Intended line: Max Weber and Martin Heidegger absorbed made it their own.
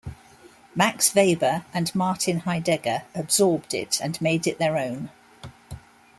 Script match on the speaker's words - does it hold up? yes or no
no